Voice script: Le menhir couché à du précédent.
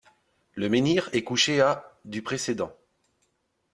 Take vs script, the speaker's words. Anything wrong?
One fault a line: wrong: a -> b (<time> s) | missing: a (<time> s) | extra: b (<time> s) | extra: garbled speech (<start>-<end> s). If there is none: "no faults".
extra: est (1.1 s)